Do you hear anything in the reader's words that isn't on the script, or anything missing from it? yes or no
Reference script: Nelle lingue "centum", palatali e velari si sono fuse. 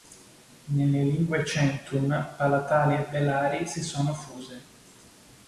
no